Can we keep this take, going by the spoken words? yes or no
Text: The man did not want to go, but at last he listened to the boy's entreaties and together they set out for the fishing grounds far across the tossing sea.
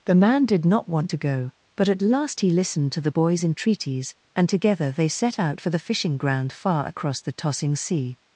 no